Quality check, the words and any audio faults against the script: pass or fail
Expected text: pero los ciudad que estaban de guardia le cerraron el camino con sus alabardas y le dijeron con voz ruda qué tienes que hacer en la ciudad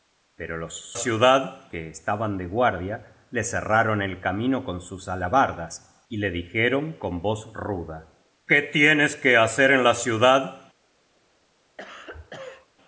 fail